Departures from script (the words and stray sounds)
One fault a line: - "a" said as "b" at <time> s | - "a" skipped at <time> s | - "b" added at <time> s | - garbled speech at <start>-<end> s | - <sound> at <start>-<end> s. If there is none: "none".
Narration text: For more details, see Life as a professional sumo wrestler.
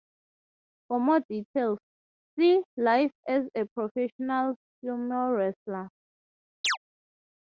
- chirp at 6.6-6.8 s